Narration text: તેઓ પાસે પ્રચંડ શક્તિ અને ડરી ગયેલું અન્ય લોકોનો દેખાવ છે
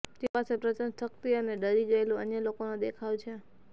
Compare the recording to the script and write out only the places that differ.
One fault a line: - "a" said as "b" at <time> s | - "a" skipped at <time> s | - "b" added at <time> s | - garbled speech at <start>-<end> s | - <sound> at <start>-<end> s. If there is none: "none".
none